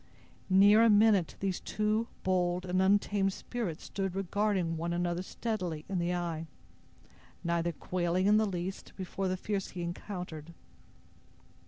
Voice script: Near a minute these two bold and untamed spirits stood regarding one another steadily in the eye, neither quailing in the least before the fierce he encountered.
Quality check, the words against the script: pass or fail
pass